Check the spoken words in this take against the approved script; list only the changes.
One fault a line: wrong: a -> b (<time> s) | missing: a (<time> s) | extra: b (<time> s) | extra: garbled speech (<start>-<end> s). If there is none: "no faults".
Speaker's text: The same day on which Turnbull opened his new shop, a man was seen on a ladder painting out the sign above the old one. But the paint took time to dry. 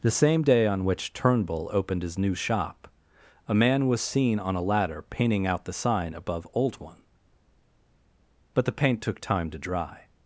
missing: the (6.5 s)